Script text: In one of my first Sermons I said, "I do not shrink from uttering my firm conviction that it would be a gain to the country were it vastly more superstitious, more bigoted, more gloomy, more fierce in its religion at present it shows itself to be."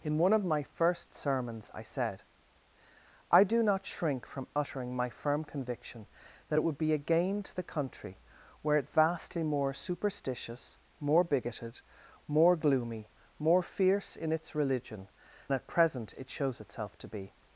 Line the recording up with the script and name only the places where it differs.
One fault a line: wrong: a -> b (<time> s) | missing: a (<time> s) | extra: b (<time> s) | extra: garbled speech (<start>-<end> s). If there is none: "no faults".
no faults